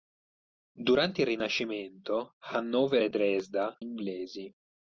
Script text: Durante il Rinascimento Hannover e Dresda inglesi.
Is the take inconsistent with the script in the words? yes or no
no